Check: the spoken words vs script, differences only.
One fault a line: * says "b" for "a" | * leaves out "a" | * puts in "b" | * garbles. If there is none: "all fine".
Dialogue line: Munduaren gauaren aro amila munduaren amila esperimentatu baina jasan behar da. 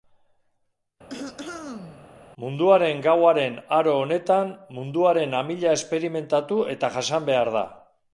* says "honetan" for "amila"
* says "eta" for "baina"